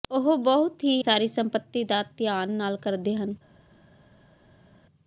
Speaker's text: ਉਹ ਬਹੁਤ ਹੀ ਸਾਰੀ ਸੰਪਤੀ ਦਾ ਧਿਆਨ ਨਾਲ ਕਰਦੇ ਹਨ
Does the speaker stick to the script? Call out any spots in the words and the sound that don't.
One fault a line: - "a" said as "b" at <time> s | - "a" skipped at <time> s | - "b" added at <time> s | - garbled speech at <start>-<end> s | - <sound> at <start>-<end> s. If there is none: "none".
none